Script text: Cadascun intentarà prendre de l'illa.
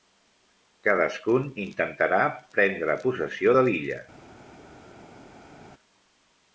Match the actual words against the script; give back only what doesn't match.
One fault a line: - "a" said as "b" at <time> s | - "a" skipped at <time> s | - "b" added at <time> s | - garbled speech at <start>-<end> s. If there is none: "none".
- "possessió" added at 3.0 s